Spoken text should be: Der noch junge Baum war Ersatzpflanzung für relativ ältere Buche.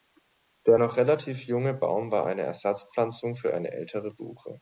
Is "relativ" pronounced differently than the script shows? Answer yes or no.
yes